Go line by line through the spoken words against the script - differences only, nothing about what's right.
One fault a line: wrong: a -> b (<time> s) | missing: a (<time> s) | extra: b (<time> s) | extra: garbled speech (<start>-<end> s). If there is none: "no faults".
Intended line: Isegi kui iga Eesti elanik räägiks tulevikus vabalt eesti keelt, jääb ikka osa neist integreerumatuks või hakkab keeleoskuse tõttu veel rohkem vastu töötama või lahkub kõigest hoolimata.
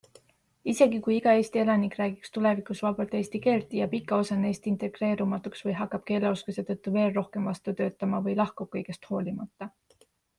no faults